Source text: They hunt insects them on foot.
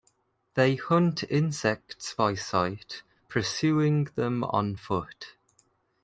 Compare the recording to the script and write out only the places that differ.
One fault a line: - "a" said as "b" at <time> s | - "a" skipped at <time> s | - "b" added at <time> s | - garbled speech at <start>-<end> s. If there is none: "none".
- "by sight pursuing" added at 2.1 s